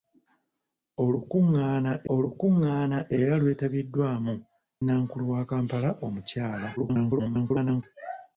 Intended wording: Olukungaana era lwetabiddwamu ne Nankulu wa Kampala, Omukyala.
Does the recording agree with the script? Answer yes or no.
no